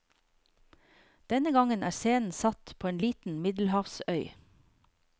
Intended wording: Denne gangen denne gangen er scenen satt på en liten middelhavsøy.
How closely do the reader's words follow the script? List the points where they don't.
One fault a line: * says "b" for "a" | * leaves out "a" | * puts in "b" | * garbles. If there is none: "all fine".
* leaves out "denne gangen"